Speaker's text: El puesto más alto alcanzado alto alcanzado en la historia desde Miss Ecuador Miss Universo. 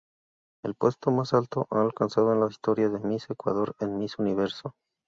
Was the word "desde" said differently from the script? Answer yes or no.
yes